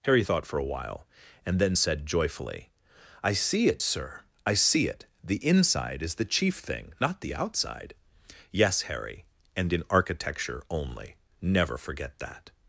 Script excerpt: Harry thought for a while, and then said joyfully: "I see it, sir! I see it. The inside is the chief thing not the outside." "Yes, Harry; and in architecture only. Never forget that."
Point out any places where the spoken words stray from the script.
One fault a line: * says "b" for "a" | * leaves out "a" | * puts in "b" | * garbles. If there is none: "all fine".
all fine